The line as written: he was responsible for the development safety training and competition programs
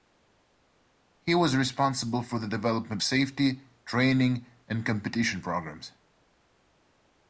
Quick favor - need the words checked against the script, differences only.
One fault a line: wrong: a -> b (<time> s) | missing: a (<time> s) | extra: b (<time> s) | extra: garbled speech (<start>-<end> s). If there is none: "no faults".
no faults